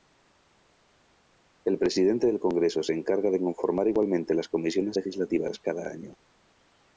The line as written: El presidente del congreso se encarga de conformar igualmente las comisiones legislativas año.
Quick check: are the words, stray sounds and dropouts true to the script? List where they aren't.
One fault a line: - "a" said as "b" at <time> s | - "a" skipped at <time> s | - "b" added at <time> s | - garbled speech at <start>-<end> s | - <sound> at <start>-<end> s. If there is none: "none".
- "cada" added at 5.6 s